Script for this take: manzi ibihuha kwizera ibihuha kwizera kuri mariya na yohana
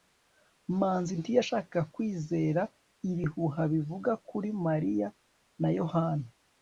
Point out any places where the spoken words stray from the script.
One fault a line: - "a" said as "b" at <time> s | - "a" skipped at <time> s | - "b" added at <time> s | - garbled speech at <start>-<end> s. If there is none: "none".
- "ibihuha" said as "ntiyashakaga" at 1.2 s
- "kwizera" said as "bivuga" at 3.7 s